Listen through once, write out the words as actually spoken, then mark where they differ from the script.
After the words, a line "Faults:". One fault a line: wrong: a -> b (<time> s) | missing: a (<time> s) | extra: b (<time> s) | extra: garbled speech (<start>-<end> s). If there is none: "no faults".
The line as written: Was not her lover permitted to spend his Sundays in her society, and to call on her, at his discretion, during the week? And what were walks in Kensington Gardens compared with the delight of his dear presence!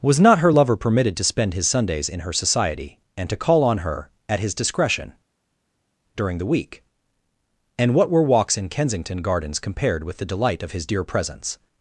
Was not her lover permitted to spend his Sundays in her society, and to call on her, at his discretion, during the week? And what were walks in Kensington Gardens compared with the delight of his dear presence!
Faults:
no faults